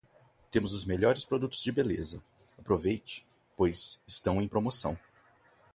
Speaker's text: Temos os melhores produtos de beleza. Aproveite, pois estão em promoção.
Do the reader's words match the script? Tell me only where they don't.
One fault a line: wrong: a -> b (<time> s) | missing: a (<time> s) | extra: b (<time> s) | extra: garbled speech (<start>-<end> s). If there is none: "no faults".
no faults